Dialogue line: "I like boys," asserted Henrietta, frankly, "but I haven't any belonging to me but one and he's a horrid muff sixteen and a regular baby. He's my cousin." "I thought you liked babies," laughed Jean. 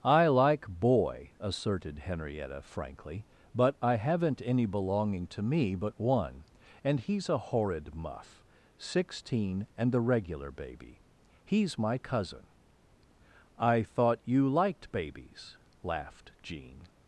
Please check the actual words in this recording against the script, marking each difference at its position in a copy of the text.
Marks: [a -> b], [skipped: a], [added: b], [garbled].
"I like [boys," -> boy] asserted Henrietta, frankly, "but I haven't any belonging to me but one and he's a horrid muff sixteen and [a -> the] regular baby. He's my cousin." "I thought you liked babies," laughed Jean.